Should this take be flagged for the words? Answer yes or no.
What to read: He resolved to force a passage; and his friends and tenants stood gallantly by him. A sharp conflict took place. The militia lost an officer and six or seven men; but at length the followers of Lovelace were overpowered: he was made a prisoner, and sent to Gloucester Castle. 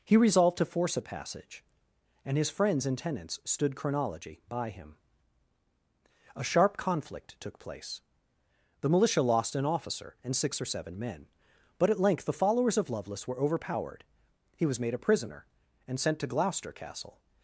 yes